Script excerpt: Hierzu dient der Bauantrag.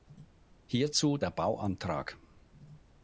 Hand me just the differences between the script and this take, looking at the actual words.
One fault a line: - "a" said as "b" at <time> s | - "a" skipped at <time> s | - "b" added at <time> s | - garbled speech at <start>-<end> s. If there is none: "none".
- "dient" skipped at 1.2 s